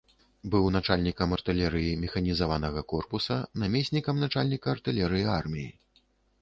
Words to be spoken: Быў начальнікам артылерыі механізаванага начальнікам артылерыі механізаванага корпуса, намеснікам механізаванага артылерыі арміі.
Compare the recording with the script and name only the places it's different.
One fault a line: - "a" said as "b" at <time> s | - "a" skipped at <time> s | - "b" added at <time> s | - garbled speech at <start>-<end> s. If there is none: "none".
- "начальнікам артылерыі механізаванага" skipped at 2.8 s
- "механізаванага" said as "начальніка" at 4.3 s